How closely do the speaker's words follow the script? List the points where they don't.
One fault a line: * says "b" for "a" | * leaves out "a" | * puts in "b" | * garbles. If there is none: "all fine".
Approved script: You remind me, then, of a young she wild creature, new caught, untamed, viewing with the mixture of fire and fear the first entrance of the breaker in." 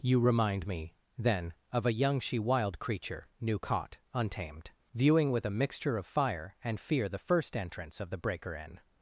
* says "a" for "the"